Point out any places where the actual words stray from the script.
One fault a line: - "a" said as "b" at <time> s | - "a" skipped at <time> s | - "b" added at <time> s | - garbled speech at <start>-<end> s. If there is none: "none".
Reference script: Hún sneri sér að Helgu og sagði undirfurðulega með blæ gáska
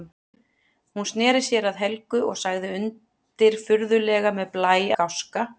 none